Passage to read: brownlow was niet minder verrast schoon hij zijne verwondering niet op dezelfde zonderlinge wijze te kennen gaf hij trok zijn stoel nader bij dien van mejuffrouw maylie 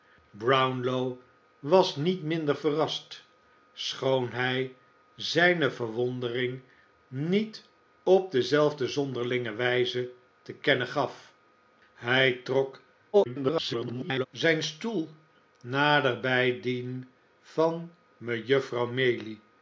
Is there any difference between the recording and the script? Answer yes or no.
yes